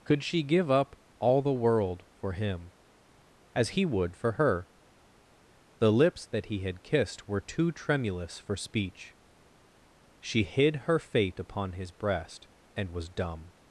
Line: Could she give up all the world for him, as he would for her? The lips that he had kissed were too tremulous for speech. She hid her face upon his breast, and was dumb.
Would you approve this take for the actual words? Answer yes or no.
no